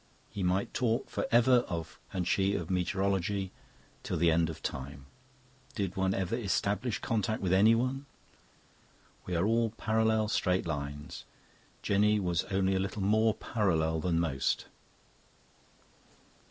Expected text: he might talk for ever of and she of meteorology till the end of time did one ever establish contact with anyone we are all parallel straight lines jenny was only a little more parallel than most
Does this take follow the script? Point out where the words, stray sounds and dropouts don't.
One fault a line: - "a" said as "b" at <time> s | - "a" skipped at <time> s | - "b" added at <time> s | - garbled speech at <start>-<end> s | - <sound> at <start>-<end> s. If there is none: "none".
none